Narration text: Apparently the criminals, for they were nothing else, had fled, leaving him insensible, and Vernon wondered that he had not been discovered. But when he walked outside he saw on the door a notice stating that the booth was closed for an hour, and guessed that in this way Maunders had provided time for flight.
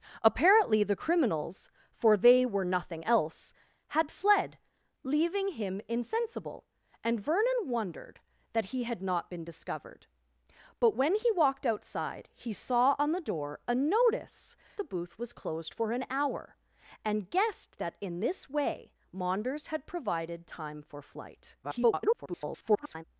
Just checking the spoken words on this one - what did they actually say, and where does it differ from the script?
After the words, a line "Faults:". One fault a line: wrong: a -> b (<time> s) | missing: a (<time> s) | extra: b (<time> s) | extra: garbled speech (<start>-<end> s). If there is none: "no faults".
Apparently the criminals, for they were nothing else, had fled, leaving him insensible, and Vernon wondered that he had not been discovered. But when he walked outside he saw on the door a notice the booth was closed for an hour, and guessed that in this way Maunders had provided time for flight. [garbled]
Faults:
missing: stating that (14.5 s)
extra: garbled speech (21.6-23.0 s)